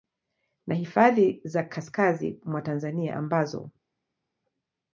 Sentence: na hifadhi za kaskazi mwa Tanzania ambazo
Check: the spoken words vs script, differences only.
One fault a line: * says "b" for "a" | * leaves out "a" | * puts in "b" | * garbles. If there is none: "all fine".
all fine